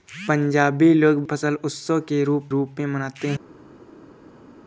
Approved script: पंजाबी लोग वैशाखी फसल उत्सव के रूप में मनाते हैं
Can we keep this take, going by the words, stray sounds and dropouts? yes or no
no